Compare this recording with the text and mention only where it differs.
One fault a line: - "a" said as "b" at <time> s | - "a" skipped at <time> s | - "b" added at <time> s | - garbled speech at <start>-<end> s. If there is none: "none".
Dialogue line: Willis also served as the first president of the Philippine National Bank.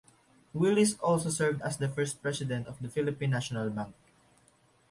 none